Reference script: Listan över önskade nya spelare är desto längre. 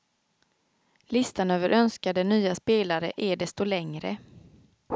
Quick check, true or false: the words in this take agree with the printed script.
true